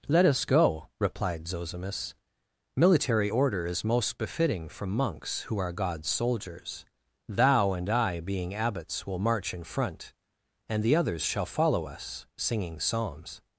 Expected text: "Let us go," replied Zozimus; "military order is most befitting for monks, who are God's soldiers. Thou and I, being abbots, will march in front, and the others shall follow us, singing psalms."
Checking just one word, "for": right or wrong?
wrong